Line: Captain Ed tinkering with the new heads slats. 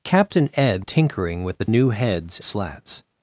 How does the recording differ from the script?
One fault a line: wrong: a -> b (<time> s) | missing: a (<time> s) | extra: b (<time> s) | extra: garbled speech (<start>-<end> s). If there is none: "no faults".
no faults